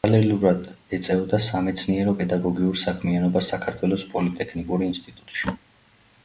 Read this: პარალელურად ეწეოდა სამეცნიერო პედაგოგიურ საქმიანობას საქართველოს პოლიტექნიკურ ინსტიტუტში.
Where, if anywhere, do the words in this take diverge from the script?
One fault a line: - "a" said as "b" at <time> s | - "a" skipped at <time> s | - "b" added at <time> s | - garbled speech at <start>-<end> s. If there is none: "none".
none